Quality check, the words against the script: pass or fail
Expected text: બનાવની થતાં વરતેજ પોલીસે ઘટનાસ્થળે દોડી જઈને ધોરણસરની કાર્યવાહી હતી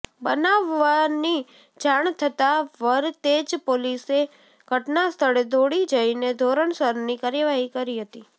fail